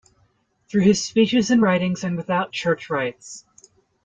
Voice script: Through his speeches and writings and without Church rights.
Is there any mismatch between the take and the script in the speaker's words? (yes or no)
no